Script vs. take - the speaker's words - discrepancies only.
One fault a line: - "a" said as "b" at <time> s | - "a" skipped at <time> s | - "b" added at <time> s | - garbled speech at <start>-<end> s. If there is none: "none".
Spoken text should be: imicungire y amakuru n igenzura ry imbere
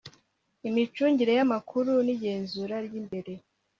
none